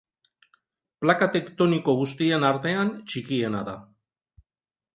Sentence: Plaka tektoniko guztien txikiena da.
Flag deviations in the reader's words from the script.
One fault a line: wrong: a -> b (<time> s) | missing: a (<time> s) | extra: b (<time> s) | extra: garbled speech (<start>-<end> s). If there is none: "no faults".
extra: artean (2.5 s)